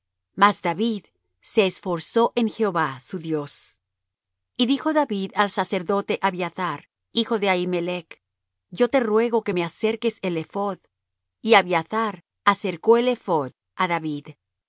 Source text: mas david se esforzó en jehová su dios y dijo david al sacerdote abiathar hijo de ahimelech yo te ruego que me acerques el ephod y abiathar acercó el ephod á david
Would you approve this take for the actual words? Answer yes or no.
yes